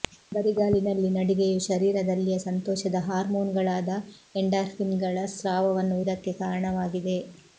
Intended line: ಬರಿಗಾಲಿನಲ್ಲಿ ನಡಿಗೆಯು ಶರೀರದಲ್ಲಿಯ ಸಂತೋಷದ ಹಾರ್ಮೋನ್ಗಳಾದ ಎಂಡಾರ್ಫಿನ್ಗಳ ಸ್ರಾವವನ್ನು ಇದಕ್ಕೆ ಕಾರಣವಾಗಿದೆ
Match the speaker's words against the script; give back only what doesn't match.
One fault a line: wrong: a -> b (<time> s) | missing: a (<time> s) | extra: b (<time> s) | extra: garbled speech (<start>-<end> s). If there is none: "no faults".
no faults